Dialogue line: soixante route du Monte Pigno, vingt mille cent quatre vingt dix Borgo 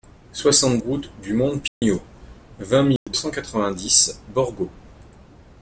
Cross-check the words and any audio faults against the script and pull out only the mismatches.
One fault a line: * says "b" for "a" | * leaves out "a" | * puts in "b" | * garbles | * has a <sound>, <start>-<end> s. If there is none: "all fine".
* has a dropout, 1.7-1.8 s
* has a dropout, 3.0-3.1 s